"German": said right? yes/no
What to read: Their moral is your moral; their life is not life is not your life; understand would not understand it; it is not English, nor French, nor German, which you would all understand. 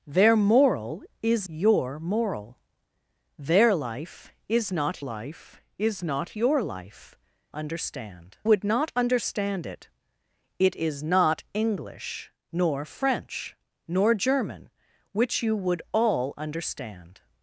yes